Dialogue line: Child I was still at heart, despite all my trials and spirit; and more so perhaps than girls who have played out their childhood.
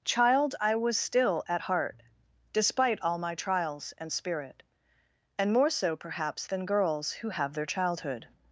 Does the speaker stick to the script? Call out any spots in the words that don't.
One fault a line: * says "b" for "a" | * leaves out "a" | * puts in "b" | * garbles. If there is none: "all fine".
* leaves out "played out"